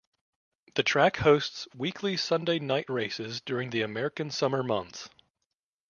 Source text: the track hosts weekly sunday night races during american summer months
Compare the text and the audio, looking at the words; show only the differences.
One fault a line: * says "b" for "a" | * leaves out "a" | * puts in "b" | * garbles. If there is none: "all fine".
* puts in "the"